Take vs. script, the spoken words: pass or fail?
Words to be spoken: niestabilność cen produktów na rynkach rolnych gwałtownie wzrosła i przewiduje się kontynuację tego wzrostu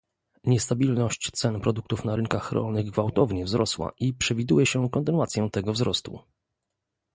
pass